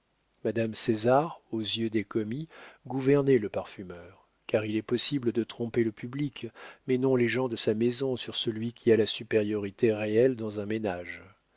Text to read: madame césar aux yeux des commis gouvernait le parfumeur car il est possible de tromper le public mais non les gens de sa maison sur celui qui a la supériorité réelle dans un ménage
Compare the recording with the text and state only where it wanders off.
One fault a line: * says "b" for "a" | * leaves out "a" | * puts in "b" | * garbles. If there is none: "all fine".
all fine